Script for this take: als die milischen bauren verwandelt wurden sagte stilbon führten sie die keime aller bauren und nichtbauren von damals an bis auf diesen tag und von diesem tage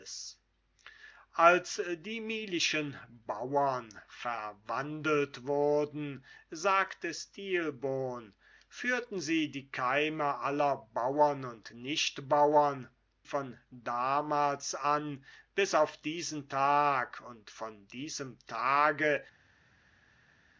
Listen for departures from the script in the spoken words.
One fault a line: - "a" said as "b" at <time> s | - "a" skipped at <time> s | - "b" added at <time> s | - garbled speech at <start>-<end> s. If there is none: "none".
none